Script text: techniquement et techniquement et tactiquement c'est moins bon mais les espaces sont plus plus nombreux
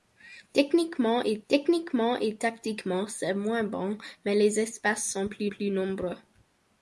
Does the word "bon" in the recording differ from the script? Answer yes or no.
no